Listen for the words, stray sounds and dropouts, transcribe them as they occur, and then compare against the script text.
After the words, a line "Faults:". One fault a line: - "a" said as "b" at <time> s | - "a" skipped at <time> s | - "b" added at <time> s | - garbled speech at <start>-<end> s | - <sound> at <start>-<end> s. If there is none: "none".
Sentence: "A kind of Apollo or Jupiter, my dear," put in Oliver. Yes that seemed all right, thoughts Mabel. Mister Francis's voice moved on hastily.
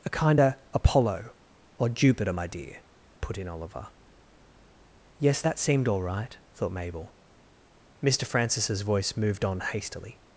"A kind of Apollo or Jupiter, my dear," put in Oliver. Yes that seemed all right, thought Mabel. Mister Francis's voice moved on hastily.
Faults:
- "thoughts" said as "thought" at 6.5 s